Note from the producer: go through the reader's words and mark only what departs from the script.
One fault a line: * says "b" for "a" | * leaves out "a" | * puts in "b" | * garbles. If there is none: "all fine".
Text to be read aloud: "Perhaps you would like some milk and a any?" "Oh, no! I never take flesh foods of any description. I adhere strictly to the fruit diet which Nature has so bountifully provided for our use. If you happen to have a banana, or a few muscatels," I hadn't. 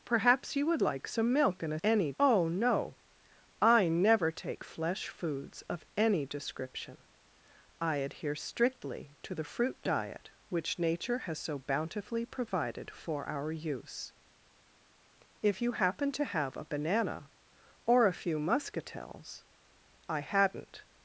all fine